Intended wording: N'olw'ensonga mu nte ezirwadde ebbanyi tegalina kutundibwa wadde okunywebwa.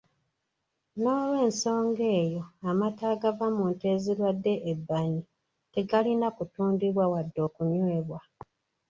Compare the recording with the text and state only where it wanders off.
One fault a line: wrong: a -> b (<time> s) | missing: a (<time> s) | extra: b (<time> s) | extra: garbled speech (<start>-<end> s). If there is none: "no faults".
extra: eyo amata agava (2.2 s)